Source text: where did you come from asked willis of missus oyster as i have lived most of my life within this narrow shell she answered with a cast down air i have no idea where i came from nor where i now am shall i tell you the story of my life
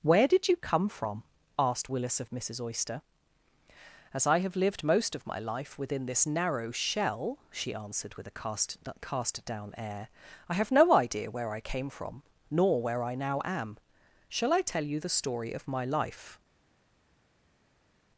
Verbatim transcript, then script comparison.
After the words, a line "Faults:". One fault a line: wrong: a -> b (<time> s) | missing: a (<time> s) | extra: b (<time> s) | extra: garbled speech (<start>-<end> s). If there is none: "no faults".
where did you come from asked willis of missus oyster as i have lived most of my life within this narrow shell she answered with a cast cast down air i have no idea where i came from nor where i now am shall i tell you the story of my life
Faults:
extra: cast (9.0 s)